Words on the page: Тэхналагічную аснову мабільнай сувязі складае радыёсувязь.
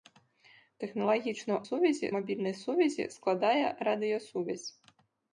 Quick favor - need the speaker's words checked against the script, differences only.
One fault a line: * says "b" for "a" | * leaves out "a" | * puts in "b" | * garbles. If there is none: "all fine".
* says "сувязі" for "аснову"